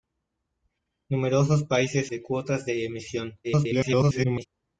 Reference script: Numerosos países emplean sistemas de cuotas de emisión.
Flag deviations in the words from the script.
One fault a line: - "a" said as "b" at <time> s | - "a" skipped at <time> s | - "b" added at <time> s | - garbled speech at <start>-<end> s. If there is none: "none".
- "emplean sistemas" skipped at 2.1 s
- garbled speech at 3.4-4.5 s